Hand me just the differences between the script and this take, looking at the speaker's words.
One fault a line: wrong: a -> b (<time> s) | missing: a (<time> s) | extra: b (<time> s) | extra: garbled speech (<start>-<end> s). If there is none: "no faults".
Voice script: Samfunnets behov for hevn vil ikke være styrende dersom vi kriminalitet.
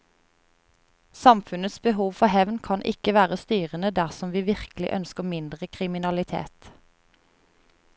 wrong: vil -> kan (2.7 s)
extra: virkelig ønsker mindre (4.5 s)